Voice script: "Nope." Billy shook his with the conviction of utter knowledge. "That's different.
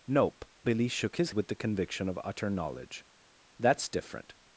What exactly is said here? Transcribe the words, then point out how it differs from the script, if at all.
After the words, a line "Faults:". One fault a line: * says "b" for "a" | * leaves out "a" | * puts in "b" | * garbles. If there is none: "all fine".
"Nope." Billy shook his with the conviction of utter knowledge. "That's different.
Faults:
all fine